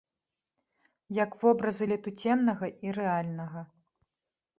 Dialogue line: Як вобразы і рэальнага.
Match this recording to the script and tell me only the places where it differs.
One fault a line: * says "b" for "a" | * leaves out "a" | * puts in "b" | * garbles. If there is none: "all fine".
* puts in "летуценнага"